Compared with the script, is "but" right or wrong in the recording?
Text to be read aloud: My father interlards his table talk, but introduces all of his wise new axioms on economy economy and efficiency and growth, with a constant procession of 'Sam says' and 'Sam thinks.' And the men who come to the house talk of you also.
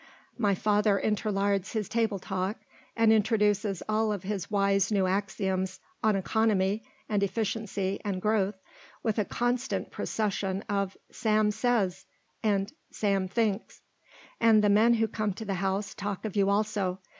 wrong